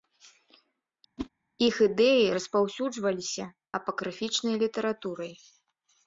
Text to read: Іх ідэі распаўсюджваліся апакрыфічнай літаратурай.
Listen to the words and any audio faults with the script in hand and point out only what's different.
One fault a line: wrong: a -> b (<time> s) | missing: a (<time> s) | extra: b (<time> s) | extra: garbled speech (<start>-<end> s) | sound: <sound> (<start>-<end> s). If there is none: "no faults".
sound: whoosh (1.2-1.3 s)